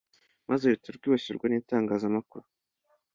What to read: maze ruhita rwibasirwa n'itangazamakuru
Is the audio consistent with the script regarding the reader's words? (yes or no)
yes